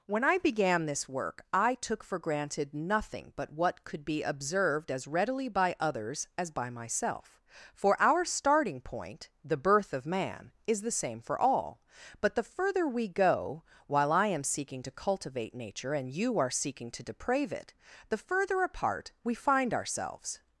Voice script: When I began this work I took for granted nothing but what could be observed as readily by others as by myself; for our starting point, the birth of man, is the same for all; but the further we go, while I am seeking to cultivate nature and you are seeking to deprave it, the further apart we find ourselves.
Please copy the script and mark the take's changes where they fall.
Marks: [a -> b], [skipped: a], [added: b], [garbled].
When I began this work I took for granted nothing but what could be observed as readily by others as by myself; for our starting point, the birth of man, is the same for all; but the further we go, while I am seeking to cultivate nature and you are seeking to deprave it, the further apart we find ourselves.